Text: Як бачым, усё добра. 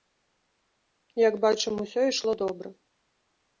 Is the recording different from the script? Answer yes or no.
yes